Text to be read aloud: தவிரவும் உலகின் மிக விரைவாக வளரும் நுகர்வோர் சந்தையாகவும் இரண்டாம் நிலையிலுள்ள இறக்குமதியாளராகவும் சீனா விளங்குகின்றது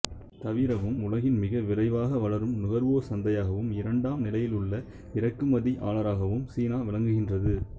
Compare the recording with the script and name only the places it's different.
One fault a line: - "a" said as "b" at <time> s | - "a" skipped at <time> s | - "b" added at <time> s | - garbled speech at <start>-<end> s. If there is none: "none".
none